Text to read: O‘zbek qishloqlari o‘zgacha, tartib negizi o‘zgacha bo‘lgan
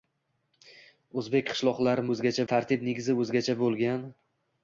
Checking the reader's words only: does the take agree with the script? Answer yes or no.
yes